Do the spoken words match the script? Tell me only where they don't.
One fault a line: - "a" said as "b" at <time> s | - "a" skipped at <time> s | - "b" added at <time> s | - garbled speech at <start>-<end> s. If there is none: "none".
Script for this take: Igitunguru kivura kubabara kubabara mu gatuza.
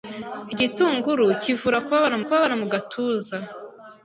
none